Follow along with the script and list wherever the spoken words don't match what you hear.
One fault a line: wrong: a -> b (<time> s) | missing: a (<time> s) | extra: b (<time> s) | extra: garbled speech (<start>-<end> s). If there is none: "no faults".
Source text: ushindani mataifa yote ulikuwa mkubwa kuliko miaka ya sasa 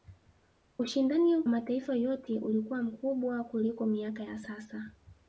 no faults